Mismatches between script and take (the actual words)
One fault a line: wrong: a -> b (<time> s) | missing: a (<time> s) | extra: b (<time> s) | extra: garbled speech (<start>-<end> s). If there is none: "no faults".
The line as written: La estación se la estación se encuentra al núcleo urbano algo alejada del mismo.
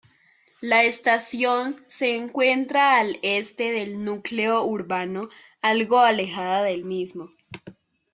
wrong: la estación se encuentra al -> encuentra al este del (2.1 s)